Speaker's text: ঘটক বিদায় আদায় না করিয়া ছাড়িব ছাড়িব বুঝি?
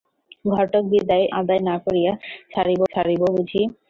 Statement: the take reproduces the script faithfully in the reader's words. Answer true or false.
true